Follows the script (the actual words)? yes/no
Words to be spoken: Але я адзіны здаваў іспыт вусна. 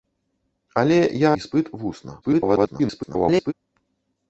no